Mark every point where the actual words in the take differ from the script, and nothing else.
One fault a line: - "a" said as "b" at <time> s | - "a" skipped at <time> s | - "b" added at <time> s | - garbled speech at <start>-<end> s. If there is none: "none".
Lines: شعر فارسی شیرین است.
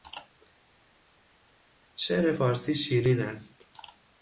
none